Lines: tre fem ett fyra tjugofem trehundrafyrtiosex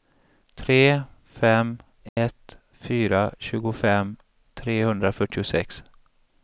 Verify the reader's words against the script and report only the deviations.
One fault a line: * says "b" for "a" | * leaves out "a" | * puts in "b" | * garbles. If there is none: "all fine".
all fine